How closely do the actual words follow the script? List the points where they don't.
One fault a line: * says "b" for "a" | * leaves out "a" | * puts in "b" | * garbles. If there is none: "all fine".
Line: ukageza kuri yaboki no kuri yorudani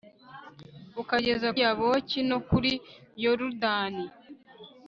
* leaves out "kuri"